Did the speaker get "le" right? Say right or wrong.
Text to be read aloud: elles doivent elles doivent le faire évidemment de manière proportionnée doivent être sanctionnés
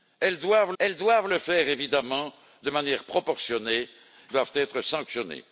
right